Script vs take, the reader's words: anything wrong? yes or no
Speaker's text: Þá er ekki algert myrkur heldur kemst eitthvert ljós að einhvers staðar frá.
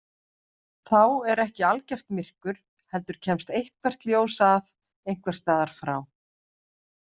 no